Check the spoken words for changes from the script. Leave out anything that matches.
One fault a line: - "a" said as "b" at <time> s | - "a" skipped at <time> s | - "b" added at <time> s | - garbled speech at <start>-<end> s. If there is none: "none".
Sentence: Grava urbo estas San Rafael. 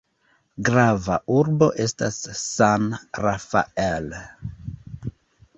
none